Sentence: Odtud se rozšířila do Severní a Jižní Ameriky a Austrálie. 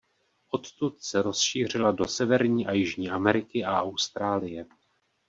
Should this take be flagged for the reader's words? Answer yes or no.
no